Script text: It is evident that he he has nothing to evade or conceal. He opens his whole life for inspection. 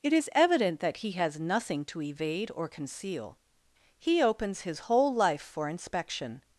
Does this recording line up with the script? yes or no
no